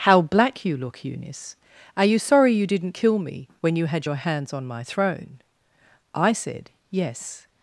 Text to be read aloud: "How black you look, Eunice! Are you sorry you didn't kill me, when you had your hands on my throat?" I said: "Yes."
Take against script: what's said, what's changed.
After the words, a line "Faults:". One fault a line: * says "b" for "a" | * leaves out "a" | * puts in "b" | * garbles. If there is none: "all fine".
"How black you look, Eunice! Are you sorry you didn't kill me, when you had your hands on my throne?" I said: "Yes."
Faults:
* says "throne" for "throat"